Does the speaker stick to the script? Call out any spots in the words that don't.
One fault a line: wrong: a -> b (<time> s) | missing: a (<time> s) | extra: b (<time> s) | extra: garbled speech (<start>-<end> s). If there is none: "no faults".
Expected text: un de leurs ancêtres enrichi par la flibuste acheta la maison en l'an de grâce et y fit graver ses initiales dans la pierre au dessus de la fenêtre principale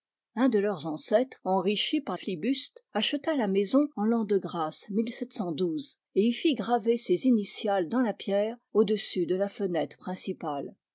missing: la (2.2 s)